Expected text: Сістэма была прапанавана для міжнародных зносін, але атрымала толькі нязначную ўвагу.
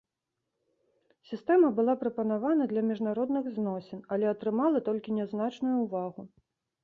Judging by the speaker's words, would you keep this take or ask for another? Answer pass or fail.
pass